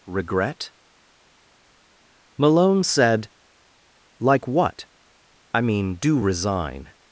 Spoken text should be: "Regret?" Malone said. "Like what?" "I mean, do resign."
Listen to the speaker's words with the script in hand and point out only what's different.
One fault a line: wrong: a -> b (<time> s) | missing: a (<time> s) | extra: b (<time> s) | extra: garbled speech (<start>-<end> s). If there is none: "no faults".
no faults